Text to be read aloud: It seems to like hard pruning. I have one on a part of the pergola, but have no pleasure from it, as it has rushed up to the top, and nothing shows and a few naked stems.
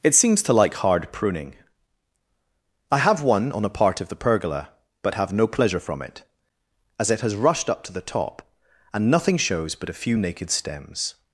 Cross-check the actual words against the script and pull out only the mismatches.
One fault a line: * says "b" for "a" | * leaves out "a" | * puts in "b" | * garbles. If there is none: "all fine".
* says "but" for "and"